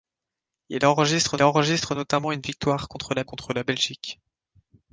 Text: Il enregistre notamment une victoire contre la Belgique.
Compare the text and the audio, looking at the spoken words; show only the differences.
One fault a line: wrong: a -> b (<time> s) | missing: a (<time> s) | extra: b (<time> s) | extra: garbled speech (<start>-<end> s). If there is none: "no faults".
extra: enregistre (1.4 s)
extra: contre la (3.3 s)